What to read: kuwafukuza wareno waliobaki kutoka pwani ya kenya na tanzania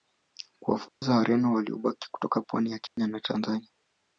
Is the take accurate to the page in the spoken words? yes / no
yes